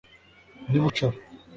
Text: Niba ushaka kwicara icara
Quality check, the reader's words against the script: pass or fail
fail